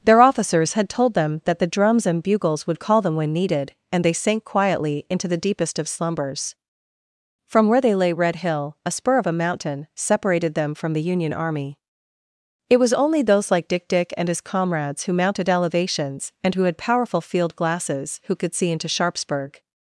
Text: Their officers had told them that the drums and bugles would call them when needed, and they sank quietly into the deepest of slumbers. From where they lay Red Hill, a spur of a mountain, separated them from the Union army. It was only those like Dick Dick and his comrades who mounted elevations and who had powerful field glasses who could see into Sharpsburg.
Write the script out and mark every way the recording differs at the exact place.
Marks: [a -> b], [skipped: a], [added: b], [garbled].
Their officers had told them that the drums and bugles would call them when needed, and they sank quietly into the deepest of slumbers. From where they lay Red Hill, a spur of a mountain, separated them from the Union army. It was only those like Dick Dick and his comrades who mounted elevations and who had powerful field glasses who could see into Sharpsburg.